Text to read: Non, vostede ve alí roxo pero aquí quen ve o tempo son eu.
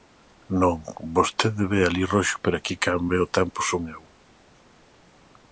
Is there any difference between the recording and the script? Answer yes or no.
no